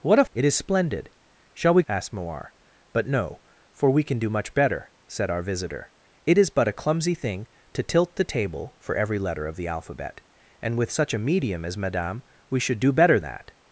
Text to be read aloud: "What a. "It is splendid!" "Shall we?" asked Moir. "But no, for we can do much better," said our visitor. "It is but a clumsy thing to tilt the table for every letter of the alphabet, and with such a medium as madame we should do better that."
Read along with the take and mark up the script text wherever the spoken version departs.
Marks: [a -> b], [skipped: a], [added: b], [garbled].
"What a. "It is splendid!" "Shall we?" asked Moir. "But no, for we can do much better," said our visitor. "It is but a clumsy thing to tilt the table for every letter of the alphabet, and with such a medium as madame we should do better that."